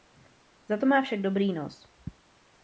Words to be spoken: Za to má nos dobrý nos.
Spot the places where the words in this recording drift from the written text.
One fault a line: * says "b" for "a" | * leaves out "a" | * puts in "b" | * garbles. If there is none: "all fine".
* says "však" for "nos"